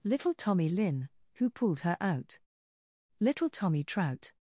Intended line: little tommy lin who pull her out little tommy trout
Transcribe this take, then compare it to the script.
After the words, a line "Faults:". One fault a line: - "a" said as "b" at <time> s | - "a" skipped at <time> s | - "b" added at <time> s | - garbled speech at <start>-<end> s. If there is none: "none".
little tommy lin who pulled her out little tommy trout
Faults:
- "pull" said as "pulled" at 1.5 s